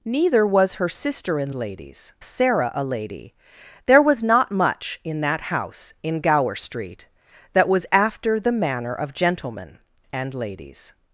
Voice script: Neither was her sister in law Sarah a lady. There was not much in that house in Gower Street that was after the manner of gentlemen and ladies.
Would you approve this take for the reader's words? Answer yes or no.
no